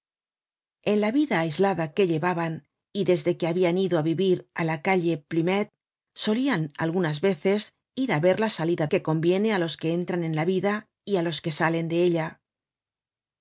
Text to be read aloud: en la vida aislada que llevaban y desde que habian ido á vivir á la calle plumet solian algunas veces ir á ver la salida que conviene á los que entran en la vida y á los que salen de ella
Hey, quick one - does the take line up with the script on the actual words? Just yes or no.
yes